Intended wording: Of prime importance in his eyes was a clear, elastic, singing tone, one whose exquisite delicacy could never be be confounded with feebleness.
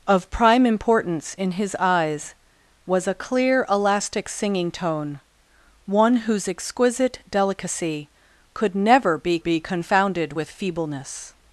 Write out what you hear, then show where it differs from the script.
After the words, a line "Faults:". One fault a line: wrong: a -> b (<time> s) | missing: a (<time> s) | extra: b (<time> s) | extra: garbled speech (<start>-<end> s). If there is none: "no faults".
Of prime importance in his eyes was a clear, elastic, singing tone, one whose exquisite delicacy could never be be confounded with feebleness.
Faults:
no faults